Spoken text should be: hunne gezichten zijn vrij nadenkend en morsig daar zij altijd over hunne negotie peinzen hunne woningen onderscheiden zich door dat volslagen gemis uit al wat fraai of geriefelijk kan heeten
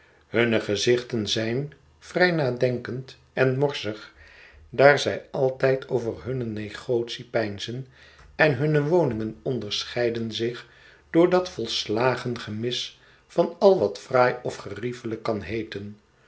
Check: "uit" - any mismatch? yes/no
yes